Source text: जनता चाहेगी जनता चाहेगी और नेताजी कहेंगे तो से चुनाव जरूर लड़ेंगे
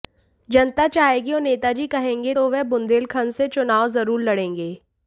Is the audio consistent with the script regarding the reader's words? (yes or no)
no